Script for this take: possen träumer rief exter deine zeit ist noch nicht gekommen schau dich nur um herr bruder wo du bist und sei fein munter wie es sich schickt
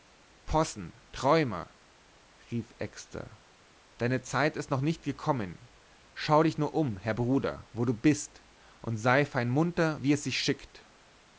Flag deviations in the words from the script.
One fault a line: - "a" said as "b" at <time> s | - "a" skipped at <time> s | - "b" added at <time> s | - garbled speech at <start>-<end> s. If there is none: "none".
none